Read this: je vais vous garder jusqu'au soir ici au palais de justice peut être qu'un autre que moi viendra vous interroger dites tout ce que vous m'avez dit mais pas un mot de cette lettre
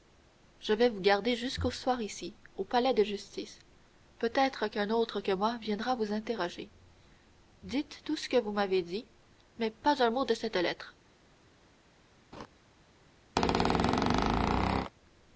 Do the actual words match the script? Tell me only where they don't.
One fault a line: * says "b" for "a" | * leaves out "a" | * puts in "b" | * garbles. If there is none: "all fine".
all fine